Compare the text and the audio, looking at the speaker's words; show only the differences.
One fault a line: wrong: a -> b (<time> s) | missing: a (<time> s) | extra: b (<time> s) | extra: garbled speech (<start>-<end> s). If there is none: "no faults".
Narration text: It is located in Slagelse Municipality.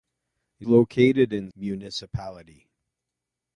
missing: is (0.7 s)
missing: Slagelse (1.5 s)